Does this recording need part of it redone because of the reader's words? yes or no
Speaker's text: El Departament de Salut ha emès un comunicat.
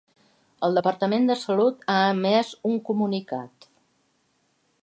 no